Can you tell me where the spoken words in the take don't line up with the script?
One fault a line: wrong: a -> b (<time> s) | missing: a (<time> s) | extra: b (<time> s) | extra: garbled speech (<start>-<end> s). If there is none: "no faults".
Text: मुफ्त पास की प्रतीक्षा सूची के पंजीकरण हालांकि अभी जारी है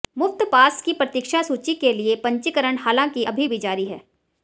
extra: लिए (1.9 s)
extra: भी (3.4 s)